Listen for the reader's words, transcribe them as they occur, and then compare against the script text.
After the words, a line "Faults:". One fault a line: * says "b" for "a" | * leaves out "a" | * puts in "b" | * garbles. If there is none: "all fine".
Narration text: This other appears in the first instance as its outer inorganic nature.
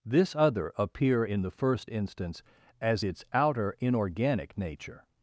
This other appear in the first instance as its outer inorganic nature.
Faults:
* says "appear" for "appears"